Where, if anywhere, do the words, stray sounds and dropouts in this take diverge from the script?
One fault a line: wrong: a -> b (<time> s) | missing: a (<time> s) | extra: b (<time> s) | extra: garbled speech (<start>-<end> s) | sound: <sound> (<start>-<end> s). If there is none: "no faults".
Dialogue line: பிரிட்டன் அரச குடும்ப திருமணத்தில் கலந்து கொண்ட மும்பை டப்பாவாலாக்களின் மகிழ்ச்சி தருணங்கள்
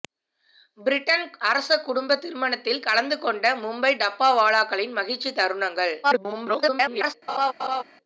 extra: garbled speech (6.0-7.1 s)
sound: laugh (7.3-7.8 s)